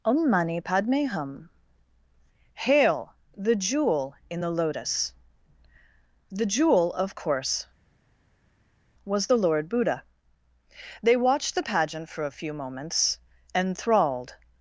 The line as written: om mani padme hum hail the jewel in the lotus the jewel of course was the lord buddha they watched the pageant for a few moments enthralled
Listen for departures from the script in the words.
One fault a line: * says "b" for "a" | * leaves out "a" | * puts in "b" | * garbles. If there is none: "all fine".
all fine